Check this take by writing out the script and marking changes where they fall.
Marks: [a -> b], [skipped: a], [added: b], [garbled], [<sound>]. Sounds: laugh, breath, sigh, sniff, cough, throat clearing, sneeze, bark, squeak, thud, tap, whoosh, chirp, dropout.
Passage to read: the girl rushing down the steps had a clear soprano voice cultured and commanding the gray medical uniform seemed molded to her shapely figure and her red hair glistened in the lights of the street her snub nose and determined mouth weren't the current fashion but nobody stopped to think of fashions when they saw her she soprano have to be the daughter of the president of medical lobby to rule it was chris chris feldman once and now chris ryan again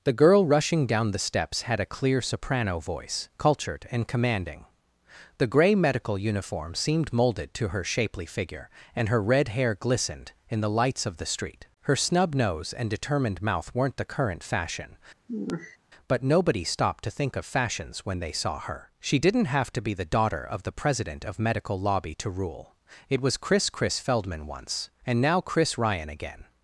the girl rushing down the steps had a clear soprano voice cultured and commanding the gray medical uniform seemed molded to her shapely figure and her red hair glistened in the lights of the street her snub nose and determined mouth weren't the current fashion [sigh] but nobody stopped to think of fashions when they saw her she [soprano -> didn't] have to be the daughter of the president of medical lobby to rule it was chris chris feldman once and now chris ryan again